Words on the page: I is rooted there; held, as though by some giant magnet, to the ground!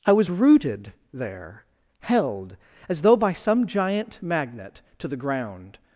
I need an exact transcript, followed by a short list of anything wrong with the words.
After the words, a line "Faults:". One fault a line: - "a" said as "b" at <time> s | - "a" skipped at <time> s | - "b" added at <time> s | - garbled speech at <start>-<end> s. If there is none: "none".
I was rooted there; held, as though by some giant magnet, to the ground!
Faults:
- "is" said as "was" at 0.1 s